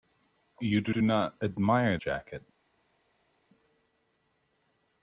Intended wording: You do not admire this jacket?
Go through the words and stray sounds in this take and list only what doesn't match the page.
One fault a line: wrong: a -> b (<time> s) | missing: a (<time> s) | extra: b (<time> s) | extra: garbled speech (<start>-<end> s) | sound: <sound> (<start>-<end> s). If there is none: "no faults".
extra: do (0.9 s)
missing: this (2.0 s)